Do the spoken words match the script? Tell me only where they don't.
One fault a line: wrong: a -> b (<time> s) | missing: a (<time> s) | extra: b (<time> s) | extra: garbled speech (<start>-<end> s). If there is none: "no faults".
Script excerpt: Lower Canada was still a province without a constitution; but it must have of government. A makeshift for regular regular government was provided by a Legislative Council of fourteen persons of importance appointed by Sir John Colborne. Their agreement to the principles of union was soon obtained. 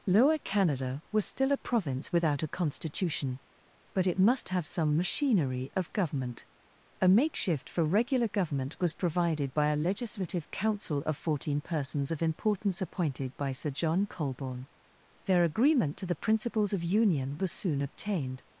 extra: some machinery (4.7 s)
missing: regular (8.3 s)